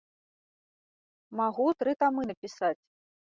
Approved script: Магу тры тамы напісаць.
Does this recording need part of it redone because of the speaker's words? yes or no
no